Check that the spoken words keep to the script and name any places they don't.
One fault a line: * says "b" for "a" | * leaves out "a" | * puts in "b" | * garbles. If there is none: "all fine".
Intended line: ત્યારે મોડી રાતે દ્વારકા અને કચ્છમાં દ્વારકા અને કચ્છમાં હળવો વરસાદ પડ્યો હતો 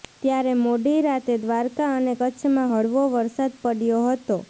* leaves out "દ્વારકા અને કચ્છમાં"